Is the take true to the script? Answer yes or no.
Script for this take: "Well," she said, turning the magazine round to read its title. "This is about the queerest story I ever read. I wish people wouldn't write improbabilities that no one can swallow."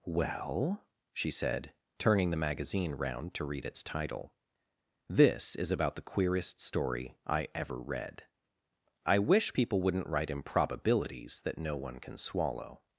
yes